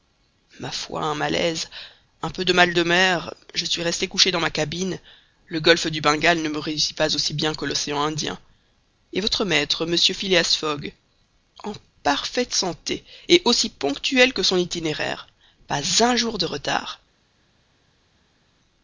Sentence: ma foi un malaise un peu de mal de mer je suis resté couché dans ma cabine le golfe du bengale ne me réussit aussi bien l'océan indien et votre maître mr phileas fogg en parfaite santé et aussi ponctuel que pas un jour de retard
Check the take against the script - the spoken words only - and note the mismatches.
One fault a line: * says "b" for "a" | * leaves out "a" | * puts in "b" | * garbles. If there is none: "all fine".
* puts in "pas"
* puts in "que"
* puts in "son itinéraire"